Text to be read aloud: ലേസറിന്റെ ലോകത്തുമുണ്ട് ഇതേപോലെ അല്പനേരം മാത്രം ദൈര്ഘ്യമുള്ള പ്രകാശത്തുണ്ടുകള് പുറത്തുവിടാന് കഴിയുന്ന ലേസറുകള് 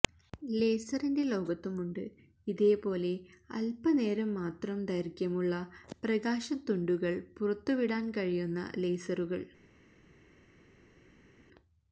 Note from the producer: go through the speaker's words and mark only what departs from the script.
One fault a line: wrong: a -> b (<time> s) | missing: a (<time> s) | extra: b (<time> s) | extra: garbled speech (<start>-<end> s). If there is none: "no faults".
no faults